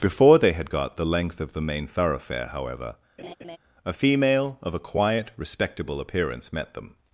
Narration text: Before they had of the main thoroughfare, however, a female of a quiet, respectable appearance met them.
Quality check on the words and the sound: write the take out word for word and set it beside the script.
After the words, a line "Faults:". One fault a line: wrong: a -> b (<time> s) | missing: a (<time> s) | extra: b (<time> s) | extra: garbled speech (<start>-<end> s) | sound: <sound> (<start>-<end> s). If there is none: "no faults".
Before they had got the length of the main thoroughfare, however, a female of a quiet, respectable appearance met them.
Faults:
extra: got the length (0.7 s)
sound: laugh (3.2-3.6 s)